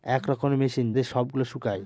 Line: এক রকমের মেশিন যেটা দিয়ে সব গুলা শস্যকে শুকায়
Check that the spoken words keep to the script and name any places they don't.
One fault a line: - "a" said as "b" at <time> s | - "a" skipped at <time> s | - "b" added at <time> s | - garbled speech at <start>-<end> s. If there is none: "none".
- "যেটা" skipped at 0.9 s
- "শস্যকে" skipped at 1.5 s